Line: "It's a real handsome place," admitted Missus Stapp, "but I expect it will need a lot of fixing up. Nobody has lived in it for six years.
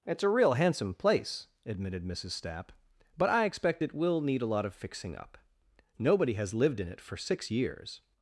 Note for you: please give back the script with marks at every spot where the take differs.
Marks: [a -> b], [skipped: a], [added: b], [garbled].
"It's a real handsome place," admitted Missus Stapp, "but I expect it will need a lot of fixing up. Nobody has lived in it for six years.